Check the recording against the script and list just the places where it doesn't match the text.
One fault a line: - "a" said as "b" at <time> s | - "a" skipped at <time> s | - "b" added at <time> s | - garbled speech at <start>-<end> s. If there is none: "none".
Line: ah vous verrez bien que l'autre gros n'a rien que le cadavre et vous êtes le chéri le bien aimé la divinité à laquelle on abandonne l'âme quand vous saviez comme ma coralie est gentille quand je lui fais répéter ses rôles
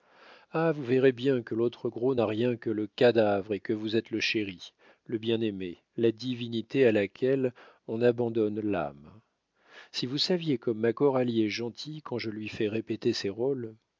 - "que" added at 3.6 s
- "quand" said as "si" at 9.9 s